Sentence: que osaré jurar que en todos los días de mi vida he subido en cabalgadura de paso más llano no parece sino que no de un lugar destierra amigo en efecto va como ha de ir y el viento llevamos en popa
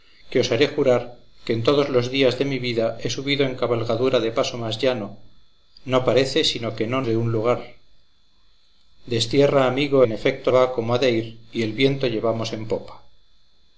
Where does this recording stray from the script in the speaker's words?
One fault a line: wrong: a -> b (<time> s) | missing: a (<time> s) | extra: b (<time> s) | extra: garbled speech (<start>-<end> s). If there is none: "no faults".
no faults